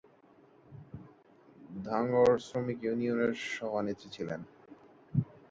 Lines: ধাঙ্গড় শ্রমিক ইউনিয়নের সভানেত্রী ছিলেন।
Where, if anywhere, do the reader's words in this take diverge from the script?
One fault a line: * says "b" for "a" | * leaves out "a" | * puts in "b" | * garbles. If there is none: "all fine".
all fine